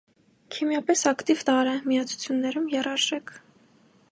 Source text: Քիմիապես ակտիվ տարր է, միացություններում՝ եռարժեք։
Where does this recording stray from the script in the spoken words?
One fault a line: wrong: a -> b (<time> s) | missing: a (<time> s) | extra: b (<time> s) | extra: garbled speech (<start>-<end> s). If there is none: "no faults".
no faults